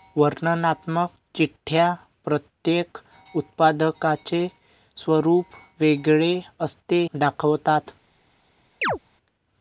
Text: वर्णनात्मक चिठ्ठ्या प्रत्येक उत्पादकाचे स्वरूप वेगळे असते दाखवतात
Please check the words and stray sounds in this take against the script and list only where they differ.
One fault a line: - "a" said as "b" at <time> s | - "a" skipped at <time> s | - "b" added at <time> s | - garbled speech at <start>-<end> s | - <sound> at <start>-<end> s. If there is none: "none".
- chirp at 8.8-9.0 s